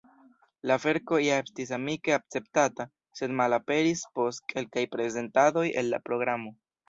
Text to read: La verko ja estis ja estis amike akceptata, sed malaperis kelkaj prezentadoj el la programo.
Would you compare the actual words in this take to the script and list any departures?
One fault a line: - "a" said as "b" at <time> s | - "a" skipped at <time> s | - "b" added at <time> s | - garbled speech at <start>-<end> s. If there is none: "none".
- "ja estis" skipped at 1.7 s
- "post" added at 4.2 s